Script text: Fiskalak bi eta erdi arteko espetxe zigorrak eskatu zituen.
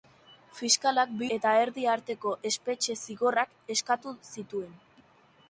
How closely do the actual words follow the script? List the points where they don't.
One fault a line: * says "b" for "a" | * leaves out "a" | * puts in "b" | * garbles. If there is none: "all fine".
all fine